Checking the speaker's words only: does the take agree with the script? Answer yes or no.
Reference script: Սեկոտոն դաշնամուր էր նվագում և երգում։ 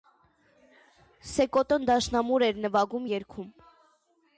no